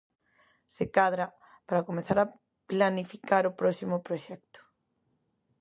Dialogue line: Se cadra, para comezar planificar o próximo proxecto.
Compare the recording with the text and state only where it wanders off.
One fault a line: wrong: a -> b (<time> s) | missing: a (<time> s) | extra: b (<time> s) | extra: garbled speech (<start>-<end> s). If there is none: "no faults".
extra: a (2.2 s)